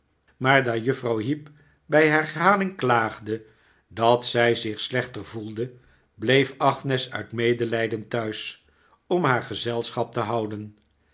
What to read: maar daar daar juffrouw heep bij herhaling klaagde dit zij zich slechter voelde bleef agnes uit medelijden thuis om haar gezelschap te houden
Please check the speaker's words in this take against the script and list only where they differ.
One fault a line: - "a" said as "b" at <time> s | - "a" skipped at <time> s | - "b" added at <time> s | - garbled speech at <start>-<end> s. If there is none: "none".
- "daar" skipped at 0.8 s
- "dit" said as "dat" at 3.9 s